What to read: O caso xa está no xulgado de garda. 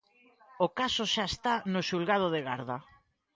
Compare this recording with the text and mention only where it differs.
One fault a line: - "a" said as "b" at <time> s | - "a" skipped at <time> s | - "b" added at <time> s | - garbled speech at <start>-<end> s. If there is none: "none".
none